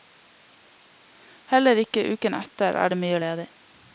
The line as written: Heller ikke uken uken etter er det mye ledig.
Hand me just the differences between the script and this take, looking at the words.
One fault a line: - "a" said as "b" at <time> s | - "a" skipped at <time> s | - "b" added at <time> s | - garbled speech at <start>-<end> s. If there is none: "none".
- "uken" skipped at 2.4 s